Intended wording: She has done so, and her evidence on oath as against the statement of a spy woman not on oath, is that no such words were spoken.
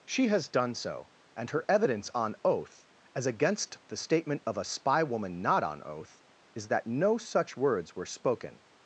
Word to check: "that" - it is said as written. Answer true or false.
true